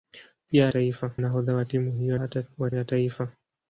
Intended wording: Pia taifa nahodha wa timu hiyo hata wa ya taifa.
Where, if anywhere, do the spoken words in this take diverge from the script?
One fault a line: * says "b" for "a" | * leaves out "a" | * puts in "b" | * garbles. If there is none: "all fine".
all fine